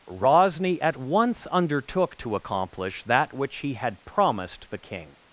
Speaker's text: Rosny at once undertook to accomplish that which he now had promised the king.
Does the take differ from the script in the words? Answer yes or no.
yes